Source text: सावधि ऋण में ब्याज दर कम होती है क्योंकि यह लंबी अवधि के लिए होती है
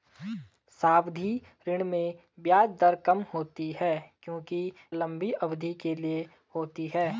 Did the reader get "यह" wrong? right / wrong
wrong